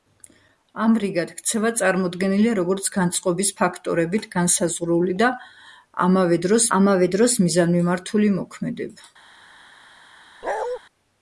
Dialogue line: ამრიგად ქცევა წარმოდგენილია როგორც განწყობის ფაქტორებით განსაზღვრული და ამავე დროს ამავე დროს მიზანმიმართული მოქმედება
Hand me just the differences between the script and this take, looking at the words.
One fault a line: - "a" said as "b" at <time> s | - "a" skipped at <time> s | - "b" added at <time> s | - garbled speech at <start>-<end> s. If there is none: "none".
none